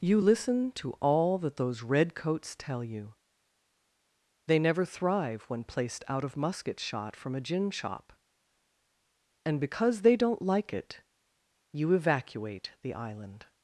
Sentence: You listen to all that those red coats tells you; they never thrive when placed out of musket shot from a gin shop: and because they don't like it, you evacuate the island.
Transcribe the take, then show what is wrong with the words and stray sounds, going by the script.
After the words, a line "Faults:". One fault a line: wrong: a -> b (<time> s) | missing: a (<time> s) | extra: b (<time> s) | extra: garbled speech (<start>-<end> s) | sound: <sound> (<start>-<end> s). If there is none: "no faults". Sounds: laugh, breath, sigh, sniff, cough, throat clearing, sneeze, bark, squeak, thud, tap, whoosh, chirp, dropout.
You listen to all that those red coats tell you; they never thrive when placed out of musket shot from a gin shop: and because they don't like it, you evacuate the island.
Faults:
wrong: tells -> tell (2.6 s)